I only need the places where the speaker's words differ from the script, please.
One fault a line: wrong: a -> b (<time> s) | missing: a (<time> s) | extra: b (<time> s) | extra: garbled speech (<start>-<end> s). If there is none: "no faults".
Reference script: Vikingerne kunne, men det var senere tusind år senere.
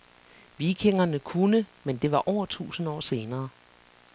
wrong: senere -> over (2.3 s)